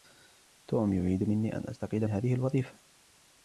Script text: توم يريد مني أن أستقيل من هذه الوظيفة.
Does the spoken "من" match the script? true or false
false